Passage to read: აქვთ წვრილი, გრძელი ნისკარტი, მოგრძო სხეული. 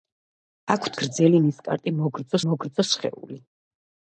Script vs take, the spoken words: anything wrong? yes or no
yes